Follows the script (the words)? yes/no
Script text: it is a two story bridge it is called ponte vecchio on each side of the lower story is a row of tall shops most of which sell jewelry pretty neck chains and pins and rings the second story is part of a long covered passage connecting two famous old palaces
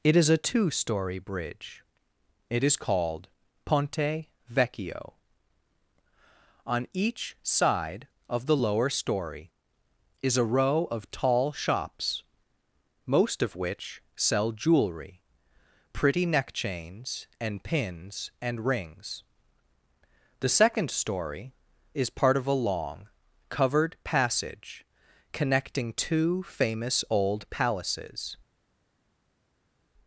yes